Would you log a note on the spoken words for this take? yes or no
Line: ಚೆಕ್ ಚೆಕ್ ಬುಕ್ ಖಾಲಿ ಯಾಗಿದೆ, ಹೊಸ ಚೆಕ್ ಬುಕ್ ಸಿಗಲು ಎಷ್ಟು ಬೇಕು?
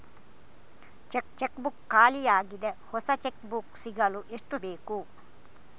no